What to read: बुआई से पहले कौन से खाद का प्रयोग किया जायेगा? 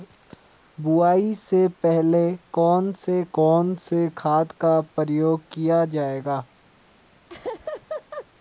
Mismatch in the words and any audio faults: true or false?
true